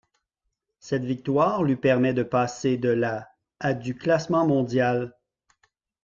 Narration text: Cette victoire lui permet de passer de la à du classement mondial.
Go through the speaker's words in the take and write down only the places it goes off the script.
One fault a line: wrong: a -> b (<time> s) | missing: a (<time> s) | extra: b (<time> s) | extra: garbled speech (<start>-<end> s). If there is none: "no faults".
no faults